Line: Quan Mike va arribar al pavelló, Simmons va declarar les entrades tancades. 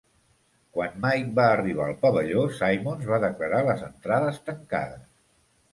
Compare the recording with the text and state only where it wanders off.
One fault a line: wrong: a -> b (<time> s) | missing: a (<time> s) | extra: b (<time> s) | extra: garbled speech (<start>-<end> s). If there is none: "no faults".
no faults